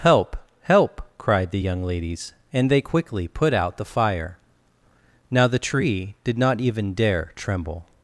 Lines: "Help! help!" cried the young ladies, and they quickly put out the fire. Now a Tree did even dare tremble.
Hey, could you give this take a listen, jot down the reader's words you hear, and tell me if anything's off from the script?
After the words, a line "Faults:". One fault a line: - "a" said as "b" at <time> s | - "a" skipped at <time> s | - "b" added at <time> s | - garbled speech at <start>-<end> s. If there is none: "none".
"Help! help!" cried the young ladies, and they quickly put out the fire. Now the Tree did not even dare tremble.
Faults:
- "a" said as "the" at 5.5 s
- "not" added at 6.4 s